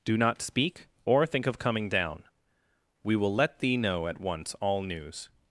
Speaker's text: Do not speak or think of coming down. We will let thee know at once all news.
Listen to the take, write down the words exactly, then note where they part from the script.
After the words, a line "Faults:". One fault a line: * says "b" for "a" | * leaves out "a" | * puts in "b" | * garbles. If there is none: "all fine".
Do not speak or think of coming down. We will let thee know at once all news.
Faults:
all fine